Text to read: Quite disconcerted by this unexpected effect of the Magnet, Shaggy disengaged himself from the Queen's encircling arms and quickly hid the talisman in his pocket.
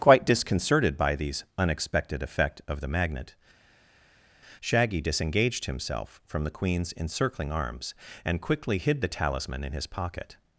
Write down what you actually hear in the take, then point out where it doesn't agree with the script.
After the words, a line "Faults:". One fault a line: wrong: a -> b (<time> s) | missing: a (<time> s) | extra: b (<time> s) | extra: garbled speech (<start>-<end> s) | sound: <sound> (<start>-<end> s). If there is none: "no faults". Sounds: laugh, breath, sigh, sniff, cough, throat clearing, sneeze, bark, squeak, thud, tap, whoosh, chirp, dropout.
Quite disconcerted by these unexpected effect of the Magnet, Shaggy disengaged himself from the Queen's encircling arms and quickly hid the talisman in his pocket.
Faults:
wrong: this -> these (1.1 s)